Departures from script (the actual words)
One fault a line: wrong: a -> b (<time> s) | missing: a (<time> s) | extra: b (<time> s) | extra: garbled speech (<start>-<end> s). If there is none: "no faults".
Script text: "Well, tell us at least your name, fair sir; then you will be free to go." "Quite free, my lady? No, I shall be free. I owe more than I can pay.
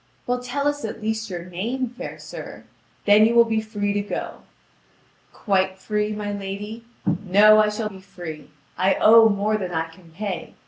no faults